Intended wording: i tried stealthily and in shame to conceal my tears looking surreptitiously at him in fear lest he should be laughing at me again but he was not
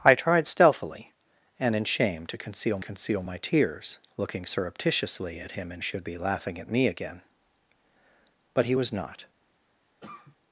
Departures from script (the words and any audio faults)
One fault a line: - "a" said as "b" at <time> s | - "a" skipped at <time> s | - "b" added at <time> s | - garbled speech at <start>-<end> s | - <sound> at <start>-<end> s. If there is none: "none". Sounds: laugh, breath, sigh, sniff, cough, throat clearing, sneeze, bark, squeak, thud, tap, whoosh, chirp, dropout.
- "conceal" added at 2.8 s
- "fear lest he" skipped at 5.8 s
- cough at 10.0-10.4 s